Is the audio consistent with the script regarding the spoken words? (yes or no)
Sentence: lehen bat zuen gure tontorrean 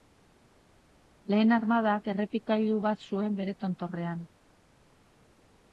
no